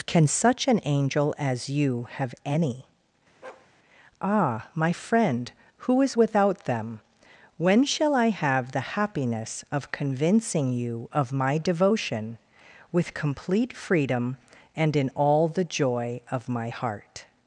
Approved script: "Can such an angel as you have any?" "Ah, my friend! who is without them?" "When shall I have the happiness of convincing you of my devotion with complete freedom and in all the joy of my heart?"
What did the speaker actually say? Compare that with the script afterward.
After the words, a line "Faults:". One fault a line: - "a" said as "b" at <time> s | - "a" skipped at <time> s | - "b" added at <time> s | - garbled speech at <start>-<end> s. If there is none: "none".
"Can such an angel as you have any?" "Ah, my friend! who is without them?" "When shall I have the happiness of convincing you of my devotion with complete freedom and in all the joy of my heart?"
Faults:
none